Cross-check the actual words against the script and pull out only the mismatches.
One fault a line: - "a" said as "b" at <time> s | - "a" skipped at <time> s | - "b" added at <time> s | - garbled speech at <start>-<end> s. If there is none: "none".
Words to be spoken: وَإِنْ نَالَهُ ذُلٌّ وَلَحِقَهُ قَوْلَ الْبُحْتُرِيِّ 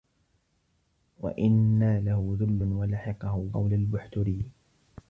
none